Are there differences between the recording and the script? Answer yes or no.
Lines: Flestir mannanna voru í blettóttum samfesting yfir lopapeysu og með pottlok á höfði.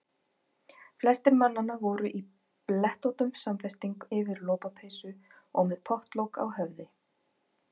no